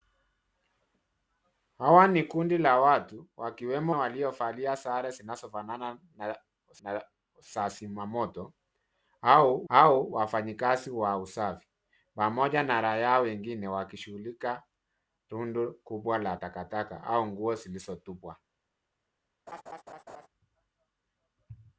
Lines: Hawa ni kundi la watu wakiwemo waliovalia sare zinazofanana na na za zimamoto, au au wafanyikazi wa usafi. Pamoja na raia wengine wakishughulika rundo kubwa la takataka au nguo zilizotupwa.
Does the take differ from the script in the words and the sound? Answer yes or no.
yes